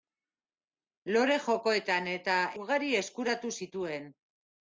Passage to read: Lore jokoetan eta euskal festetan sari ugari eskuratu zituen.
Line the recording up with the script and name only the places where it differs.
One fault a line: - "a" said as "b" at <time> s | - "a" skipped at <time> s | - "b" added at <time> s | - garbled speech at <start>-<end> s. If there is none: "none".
- "euskal festetan sari" skipped at 2.4 s